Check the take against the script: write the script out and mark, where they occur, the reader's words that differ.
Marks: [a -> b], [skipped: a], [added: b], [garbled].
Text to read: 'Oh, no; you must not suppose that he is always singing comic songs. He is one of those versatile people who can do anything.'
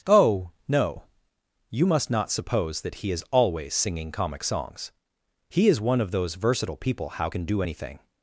'Oh, no; you must not suppose that he is always singing comic songs. He is one of those versatile people [who -> how] can do anything.'